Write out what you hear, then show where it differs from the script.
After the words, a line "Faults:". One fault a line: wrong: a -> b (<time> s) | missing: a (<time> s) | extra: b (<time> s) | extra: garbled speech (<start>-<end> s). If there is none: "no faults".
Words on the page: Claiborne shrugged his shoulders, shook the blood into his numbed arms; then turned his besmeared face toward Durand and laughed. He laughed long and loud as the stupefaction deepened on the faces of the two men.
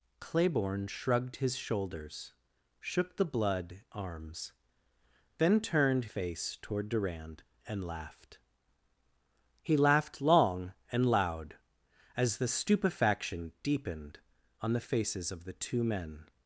Claiborne shrugged his shoulders, shook the blood arms; then turned face toward Durand and laughed. He laughed long and loud as the stupefaction deepened on the faces of the two men.
Faults:
missing: into his numbed (3.8 s)
missing: his besmeared (6.1 s)